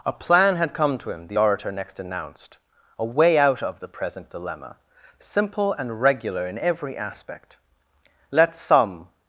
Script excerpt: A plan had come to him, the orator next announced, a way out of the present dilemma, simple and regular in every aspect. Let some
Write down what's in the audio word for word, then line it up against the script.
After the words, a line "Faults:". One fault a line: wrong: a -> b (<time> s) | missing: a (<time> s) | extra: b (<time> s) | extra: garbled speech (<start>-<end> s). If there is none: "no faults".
A plan had come to him, the orator next announced, a way out of the present dilemma, simple and regular in every aspect. Let some
Faults:
no faults